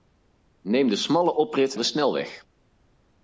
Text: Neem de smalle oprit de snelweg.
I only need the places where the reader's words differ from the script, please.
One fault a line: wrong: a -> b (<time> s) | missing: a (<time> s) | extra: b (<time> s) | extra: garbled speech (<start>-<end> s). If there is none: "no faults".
no faults